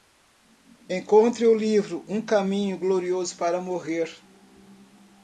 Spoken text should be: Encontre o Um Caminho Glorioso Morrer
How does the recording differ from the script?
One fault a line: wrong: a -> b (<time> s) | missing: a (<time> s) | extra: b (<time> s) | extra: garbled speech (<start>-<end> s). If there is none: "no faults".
extra: livro (1.5 s)
extra: para (3.4 s)